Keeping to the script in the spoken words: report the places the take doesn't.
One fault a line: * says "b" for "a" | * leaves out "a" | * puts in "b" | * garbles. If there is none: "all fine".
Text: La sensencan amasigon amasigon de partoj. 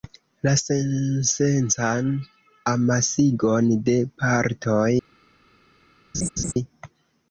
* leaves out "amasigon"